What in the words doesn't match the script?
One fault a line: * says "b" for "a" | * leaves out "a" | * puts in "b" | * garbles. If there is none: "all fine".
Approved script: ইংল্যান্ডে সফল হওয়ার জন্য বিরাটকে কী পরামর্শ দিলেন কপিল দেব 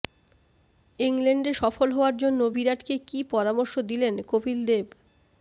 all fine